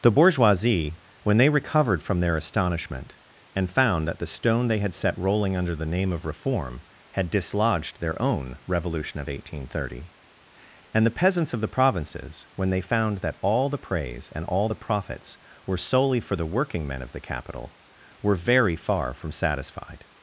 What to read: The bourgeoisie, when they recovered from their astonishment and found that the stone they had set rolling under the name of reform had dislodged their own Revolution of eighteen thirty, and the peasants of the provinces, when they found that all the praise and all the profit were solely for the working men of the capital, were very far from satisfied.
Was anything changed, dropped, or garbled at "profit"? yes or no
yes